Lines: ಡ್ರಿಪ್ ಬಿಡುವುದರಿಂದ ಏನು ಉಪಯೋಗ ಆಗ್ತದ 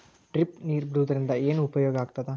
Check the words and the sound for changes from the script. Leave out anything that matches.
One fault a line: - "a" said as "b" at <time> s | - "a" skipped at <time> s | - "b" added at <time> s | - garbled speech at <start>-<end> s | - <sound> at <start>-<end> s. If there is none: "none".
- "ನೇರ್" added at 0.7 s